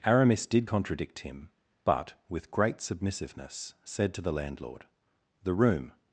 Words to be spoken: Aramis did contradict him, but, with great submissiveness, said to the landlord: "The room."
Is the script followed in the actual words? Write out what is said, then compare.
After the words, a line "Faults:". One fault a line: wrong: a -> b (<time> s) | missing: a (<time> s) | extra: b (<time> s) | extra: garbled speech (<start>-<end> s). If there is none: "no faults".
Aramis did contradict him, but, with great submissiveness, said to the landlord: "The room."
Faults:
no faults